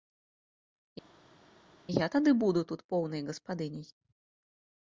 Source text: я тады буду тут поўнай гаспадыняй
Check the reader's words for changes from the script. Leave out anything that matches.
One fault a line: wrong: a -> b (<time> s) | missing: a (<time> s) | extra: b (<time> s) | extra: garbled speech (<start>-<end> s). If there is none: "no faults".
no faults